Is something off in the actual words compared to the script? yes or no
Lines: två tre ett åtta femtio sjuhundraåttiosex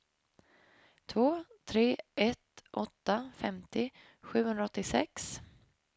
no